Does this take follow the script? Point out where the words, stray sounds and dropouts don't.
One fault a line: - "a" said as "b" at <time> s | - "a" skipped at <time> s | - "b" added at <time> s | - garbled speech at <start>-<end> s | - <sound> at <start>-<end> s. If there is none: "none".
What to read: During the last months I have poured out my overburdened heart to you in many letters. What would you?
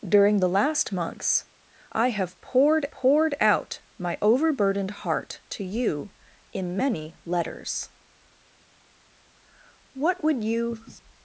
- "poured" added at 2.9 s